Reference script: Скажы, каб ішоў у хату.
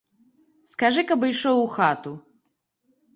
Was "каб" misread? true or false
false